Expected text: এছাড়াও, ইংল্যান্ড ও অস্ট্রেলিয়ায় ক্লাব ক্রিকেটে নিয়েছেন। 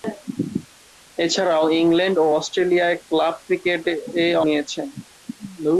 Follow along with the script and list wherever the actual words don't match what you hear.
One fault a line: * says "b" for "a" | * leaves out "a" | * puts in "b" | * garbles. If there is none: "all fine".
all fine